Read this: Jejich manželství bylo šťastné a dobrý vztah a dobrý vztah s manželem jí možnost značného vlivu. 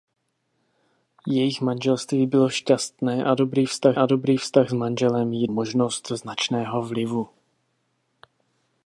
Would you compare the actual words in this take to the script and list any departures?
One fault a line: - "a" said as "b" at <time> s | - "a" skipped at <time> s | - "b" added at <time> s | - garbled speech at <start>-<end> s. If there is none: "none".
none